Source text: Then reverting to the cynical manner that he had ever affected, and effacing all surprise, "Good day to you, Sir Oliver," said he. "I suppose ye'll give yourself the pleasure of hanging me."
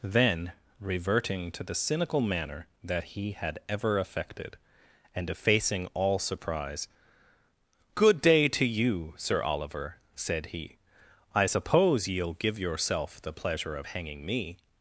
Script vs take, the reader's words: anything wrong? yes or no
no